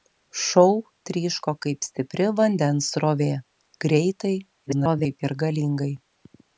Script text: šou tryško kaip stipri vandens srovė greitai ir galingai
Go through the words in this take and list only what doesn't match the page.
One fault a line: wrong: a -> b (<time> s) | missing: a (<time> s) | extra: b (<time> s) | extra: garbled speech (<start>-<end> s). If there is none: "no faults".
extra: garbled speech (4.7-5.2 s)